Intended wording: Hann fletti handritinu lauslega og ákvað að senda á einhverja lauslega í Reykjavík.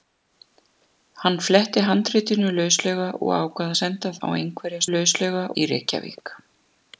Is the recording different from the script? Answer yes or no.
no